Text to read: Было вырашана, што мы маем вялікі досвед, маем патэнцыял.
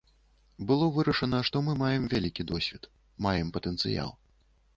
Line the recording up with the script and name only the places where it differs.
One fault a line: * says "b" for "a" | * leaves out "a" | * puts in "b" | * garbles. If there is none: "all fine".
all fine